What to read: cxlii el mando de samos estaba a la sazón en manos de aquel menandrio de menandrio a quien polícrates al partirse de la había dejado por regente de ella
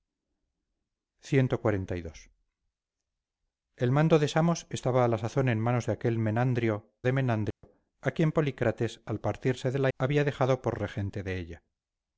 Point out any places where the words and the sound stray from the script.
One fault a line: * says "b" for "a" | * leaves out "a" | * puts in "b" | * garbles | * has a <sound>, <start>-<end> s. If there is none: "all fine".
* has a dropout, 7.5-7.6 s